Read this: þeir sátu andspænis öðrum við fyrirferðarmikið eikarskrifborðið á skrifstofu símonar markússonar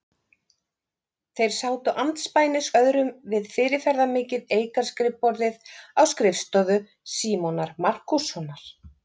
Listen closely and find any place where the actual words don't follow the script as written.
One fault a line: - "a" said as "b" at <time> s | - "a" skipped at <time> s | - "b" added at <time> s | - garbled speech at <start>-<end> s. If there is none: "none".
none